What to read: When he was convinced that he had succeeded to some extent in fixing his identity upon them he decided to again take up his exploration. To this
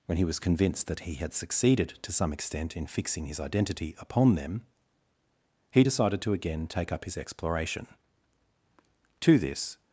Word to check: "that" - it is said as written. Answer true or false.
true